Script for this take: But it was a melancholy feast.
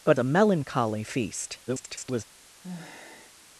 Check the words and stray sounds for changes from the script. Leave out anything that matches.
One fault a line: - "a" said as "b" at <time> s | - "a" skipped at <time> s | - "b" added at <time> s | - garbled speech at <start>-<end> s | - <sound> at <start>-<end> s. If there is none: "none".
- "it was" skipped at 0.2 s
- garbled speech at 1.7-2.2 s
- sigh at 2.6-3.5 s